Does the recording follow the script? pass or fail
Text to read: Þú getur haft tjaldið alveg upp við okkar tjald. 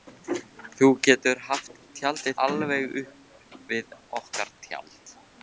pass